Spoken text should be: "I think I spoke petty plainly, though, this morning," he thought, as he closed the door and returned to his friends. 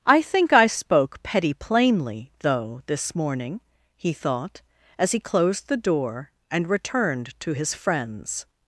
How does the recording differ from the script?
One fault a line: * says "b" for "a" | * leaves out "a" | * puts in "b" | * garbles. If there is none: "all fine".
all fine